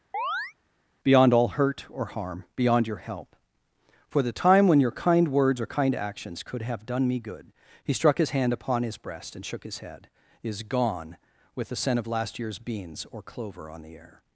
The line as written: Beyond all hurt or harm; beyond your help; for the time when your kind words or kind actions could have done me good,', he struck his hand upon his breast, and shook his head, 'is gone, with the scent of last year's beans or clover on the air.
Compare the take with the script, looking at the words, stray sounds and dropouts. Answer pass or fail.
fail